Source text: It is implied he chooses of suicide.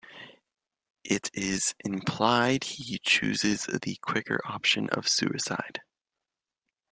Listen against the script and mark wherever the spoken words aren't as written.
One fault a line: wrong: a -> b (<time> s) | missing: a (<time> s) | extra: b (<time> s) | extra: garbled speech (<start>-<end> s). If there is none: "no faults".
extra: the quicker option (3.8 s)